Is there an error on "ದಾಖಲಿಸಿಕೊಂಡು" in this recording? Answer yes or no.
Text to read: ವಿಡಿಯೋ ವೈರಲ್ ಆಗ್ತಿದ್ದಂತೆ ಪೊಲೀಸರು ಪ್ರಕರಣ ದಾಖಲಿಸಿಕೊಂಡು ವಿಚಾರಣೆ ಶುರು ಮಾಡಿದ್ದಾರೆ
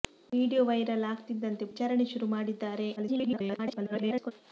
yes